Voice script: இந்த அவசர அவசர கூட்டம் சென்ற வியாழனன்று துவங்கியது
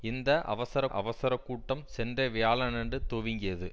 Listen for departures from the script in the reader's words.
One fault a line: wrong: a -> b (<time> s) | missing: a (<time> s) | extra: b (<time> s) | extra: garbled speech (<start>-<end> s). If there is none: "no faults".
no faults